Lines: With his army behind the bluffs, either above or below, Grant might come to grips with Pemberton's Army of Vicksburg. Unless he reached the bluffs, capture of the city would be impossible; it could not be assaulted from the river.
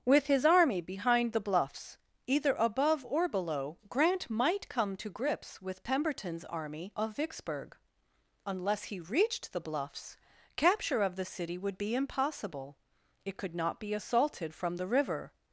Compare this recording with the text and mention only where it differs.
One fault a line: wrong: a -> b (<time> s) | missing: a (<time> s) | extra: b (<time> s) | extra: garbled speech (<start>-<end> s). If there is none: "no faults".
no faults